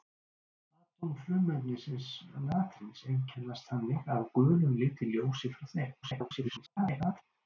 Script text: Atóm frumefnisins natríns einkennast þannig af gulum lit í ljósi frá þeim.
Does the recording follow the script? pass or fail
fail